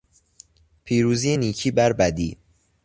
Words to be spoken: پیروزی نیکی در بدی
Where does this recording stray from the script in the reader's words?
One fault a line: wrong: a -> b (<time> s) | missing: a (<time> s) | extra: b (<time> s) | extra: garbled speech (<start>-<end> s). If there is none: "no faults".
wrong: در -> بر (1.7 s)